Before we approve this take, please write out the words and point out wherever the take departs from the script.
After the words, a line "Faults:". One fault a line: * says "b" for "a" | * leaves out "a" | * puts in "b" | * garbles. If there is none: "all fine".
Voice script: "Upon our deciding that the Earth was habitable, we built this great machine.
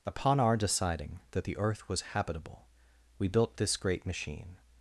"Upon our deciding that the Earth was habitable, we built this great machine.
Faults:
all fine